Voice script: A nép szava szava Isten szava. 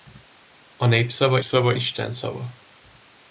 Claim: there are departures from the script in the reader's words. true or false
false